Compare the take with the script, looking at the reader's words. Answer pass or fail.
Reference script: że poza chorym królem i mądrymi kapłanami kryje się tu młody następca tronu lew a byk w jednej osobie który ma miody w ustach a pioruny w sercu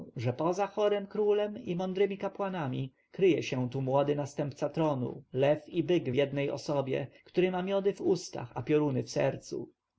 fail